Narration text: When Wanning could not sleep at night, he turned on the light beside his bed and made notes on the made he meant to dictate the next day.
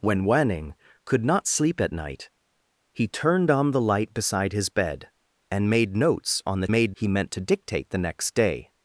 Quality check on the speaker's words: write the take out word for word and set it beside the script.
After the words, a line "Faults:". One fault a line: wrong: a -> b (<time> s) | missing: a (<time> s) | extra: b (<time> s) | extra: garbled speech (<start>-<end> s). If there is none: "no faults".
When Wanning could not sleep at night, he turned on the light beside his bed and made notes on the made he meant to dictate the next day.
Faults:
no faults